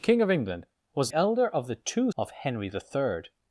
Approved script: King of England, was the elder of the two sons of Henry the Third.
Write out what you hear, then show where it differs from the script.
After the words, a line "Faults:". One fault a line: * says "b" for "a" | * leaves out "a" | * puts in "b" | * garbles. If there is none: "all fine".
King of England, was elder of the two of Henry the Third.
Faults:
* leaves out "the"
* leaves out "sons"